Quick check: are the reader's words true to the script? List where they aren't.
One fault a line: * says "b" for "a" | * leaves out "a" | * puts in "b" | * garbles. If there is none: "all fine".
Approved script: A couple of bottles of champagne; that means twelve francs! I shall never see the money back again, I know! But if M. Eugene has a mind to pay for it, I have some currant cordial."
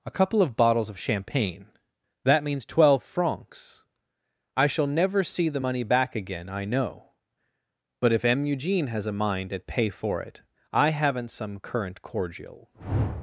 * says "at" for "to"
* says "haven't" for "have"